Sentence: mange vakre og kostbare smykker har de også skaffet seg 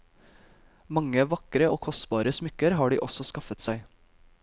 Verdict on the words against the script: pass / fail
pass